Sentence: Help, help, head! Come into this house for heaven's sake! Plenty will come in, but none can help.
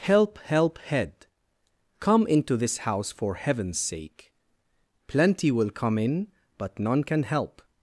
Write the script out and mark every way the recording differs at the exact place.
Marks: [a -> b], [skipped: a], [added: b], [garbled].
Help, help, head! Come into this house for heaven's sake! Plenty will come in, but none can help.